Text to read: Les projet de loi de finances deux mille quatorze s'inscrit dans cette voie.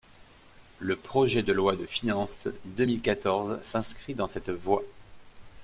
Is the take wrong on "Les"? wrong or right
wrong